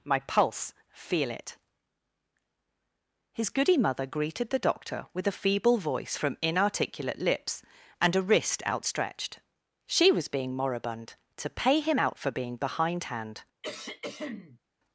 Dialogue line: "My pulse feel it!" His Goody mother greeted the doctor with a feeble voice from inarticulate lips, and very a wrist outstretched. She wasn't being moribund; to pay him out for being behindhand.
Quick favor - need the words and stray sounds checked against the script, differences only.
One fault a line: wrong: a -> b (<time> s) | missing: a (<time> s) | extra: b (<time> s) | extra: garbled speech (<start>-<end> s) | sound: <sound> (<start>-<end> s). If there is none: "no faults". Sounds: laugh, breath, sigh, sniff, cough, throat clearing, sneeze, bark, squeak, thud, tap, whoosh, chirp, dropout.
missing: very (8.1 s)
wrong: wasn't -> was (10.1 s)
sound: throat clearing (13.6-14.6 s)